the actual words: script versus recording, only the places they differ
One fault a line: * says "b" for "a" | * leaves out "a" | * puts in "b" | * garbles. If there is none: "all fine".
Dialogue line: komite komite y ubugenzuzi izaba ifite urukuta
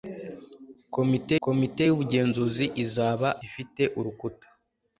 all fine